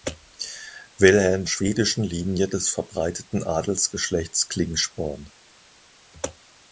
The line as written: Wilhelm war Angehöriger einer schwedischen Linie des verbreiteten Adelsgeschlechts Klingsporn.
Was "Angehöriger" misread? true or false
true